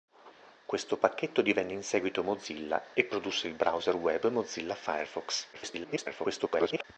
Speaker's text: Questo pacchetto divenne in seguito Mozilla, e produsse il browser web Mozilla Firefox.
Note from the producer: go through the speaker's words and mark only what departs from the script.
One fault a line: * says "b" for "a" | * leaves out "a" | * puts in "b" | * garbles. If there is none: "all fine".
* garbles